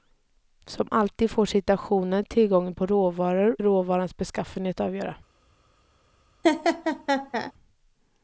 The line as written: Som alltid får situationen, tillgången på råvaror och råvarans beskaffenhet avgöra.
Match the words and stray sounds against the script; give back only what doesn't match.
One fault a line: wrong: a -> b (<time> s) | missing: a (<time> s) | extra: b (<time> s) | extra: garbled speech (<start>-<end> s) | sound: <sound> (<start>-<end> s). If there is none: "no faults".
missing: och (3.6 s)
sound: laugh (6.4-7.5 s)